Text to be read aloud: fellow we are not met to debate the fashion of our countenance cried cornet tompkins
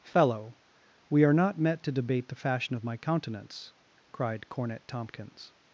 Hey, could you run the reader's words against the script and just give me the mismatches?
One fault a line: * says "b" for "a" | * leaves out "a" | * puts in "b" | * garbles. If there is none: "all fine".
* says "my" for "our"